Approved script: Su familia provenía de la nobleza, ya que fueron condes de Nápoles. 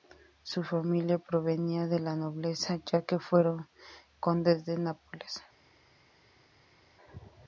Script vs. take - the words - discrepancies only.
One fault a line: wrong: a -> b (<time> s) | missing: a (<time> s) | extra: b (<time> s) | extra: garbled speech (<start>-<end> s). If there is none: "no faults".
no faults